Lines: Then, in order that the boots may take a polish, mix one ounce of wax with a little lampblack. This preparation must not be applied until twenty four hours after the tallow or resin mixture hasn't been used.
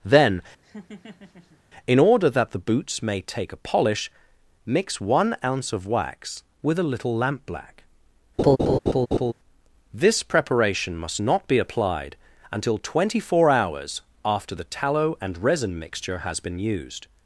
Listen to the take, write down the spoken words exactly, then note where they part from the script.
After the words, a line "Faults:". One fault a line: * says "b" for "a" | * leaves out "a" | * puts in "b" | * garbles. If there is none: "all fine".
Then, in order that the boots may take a polish, mix one ounce of wax with a little lampblack. This preparation must not be applied until twenty four hours after the tallow and resin mixture has been used.
Faults:
* says "and" for "or"
* says "has" for "hasn't"